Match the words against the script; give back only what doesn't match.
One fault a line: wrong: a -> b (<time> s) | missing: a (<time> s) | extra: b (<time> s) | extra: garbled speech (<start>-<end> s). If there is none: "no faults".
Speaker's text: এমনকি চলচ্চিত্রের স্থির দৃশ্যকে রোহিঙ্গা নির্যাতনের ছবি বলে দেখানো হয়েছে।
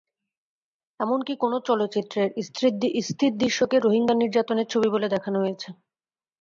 extra: কোনো (1.4 s)